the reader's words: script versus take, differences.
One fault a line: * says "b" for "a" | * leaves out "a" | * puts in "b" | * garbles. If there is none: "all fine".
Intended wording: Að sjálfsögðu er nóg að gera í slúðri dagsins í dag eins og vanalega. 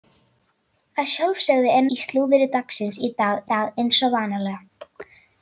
* leaves out "nóg að gera"
* puts in "dag"